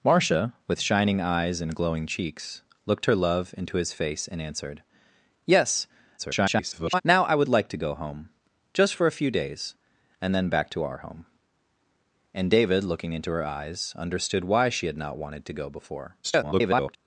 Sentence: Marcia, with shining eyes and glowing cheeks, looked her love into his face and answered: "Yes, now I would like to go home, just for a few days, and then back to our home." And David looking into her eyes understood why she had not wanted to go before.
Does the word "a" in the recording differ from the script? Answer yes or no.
no